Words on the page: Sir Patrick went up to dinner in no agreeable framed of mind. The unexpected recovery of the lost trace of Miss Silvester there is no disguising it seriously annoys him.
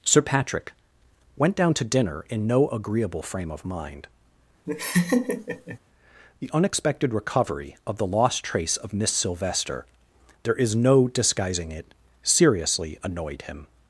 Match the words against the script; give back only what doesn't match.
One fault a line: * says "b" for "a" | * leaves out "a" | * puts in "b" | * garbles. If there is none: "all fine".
* says "down" for "up"
* says "frame" for "framed"
* says "annoyed" for "annoys"